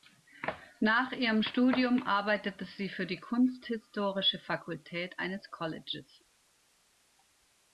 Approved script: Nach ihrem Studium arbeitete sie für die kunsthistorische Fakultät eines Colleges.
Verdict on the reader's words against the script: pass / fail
pass